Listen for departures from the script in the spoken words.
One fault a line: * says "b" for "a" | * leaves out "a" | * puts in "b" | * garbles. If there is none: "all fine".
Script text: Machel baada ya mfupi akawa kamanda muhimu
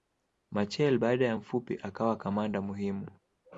all fine